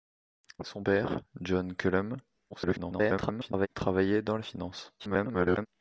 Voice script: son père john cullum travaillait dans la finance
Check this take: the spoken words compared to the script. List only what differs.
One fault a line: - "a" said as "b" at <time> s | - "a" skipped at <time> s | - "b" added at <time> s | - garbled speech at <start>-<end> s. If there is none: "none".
- garbled speech at 2.5-3.7 s
- garbled speech at 5.0-5.7 s